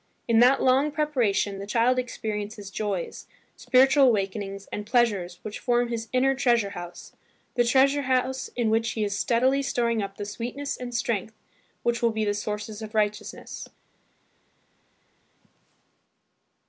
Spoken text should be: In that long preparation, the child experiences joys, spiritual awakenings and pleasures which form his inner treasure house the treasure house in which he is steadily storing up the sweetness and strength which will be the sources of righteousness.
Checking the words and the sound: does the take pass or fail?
pass